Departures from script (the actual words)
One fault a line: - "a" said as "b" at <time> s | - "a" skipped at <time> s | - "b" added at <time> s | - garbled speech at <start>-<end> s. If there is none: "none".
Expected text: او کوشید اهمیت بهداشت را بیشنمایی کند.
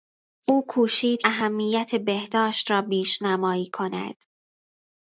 none